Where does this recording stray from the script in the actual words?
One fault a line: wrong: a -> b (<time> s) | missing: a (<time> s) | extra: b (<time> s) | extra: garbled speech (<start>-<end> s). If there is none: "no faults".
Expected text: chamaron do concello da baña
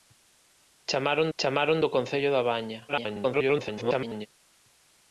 extra: chamaron (1.4 s)
extra: garbled speech (2.9-4.3 s)